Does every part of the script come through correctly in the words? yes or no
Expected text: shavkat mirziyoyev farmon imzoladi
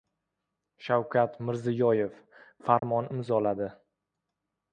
yes